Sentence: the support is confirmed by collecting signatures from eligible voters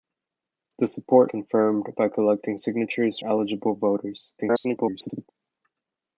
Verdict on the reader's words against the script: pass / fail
fail